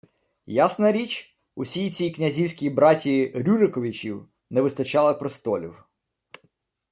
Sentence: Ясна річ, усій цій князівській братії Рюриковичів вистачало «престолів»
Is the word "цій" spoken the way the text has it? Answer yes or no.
yes